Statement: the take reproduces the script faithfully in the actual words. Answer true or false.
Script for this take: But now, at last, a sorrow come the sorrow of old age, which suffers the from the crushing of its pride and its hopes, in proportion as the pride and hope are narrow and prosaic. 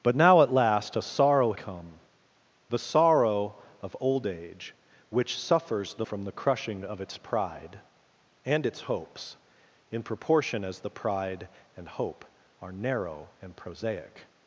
true